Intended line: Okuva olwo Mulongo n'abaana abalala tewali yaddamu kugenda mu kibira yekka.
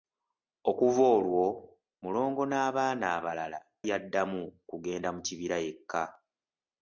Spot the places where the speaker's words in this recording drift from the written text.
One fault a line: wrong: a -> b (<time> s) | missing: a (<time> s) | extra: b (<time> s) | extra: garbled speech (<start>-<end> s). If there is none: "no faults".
missing: tewali (3.6 s)